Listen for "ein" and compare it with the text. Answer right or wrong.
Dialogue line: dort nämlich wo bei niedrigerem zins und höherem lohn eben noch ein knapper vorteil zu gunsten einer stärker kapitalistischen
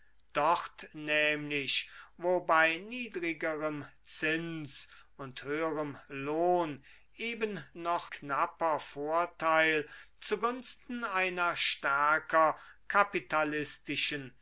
wrong